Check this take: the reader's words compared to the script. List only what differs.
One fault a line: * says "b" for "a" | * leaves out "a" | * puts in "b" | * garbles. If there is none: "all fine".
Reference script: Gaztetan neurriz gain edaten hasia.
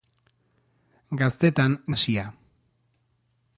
* leaves out "neurriz gain edaten"